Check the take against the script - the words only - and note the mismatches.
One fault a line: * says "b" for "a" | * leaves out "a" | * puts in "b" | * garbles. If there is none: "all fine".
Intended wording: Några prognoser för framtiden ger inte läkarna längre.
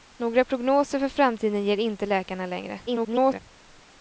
* garbles